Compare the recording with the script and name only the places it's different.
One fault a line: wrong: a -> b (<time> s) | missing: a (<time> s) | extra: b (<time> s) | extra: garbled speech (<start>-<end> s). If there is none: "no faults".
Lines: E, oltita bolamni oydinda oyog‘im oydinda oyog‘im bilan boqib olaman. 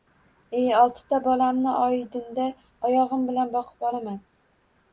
missing: oydinda oyog‘im (3.3 s)